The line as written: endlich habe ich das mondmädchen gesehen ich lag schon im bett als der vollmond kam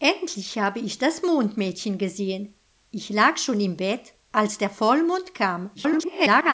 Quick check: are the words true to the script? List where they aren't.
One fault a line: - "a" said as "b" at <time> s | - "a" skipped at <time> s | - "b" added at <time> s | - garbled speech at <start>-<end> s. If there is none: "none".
- garbled speech at 5.8-6.5 s